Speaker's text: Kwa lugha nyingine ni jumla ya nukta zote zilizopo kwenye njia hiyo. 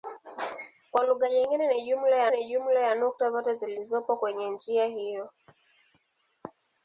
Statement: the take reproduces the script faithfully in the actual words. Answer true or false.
false